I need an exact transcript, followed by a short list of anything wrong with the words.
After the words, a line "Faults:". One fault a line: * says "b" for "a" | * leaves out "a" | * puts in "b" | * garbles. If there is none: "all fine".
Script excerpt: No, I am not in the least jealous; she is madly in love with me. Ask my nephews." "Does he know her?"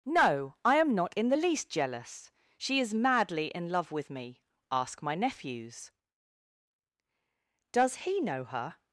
No, I am not in the least jealous; she is madly in love with me. Ask my nephews." "Does he know her?"
Faults:
all fine